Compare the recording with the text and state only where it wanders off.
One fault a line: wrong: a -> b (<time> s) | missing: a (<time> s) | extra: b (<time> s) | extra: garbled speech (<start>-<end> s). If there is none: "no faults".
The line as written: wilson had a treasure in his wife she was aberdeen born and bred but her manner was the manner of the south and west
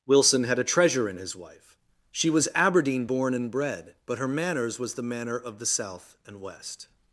wrong: manner -> manners (4.3 s)